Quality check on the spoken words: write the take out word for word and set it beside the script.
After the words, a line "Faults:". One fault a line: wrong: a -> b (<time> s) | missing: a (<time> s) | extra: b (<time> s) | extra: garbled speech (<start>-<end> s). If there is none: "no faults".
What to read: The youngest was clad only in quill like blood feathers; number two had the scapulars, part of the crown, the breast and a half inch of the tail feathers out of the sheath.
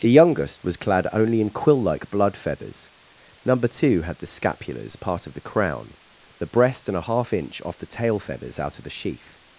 The youngest was clad only in quill like blood feathers; number two had the scapulars, part of the crown, the breast and a half inch off the tail feathers out of the sheath.
Faults:
wrong: of -> off (7.7 s)